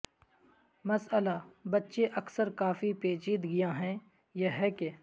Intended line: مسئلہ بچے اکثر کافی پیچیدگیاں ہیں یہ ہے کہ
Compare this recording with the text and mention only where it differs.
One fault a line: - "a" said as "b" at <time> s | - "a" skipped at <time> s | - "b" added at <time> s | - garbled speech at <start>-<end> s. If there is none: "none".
none